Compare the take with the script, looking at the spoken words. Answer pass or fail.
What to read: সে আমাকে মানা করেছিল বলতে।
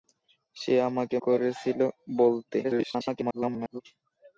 fail